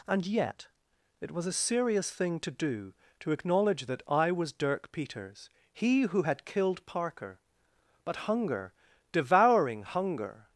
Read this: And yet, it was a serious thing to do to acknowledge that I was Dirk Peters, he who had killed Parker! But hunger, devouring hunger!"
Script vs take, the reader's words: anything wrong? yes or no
no